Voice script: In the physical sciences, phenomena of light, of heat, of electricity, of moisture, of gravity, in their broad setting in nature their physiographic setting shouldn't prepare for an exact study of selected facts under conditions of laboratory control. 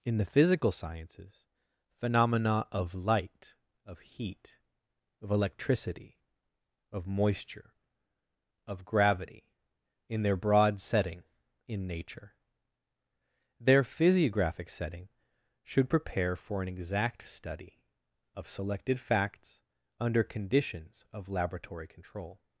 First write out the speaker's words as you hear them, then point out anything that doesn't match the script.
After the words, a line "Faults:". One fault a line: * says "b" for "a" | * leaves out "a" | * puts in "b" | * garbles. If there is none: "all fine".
In the physical sciences, phenomena of light, of heat, of electricity, of moisture, of gravity, in their broad setting in nature their physiographic setting should prepare for an exact study of selected facts under conditions of laboratory control.
Faults:
* says "should" for "shouldn't"